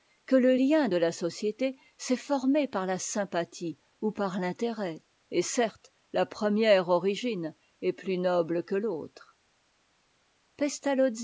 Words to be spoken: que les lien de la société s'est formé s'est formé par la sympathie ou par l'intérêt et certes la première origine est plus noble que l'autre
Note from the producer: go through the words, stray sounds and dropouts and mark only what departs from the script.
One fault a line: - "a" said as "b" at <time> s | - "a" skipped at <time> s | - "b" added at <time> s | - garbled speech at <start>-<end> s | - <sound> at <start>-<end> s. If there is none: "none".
- "les" said as "le" at 0.3 s
- "s'est formé" skipped at 2.7 s